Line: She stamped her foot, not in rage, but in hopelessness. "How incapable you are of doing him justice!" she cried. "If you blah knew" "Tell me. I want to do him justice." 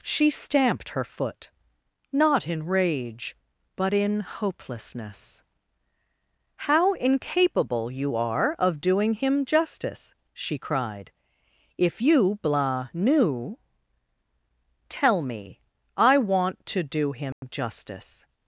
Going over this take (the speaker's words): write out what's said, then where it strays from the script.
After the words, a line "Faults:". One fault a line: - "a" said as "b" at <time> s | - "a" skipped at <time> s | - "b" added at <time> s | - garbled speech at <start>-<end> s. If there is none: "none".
She stamped her foot, not in rage, but in hopelessness. "How incapable you are of doing him justice!" she cried. "If you blah knew" "Tell me. I want to do him justice."
Faults:
none